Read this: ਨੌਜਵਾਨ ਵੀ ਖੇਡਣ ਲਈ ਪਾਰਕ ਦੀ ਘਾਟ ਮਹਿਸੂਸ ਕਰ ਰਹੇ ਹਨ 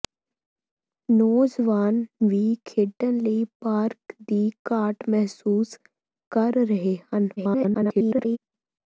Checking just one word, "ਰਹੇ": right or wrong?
right